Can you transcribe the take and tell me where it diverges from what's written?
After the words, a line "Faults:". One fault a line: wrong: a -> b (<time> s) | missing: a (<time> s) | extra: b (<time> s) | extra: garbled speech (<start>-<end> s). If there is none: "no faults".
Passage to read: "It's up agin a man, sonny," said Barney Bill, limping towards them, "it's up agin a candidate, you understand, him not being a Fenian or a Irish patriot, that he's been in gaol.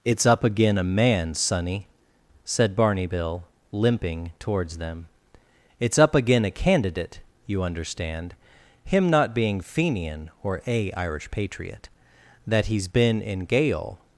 "It's up agin a man, sonny," said Barney Bill, limping towards them, "it's up agin a candidate, you understand, him not being Fenian or a Irish patriot, that he's been in gaol.
Faults:
missing: a (9.6 s)